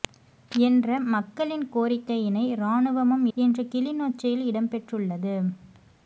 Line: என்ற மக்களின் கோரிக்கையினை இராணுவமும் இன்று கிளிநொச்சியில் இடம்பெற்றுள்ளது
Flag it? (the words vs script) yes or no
no